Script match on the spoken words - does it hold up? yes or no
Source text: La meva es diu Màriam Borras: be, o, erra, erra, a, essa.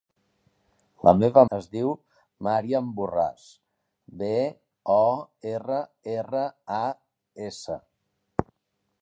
yes